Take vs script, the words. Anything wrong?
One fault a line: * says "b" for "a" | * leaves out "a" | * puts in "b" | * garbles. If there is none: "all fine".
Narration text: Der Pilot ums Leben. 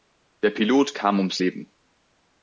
* puts in "kam"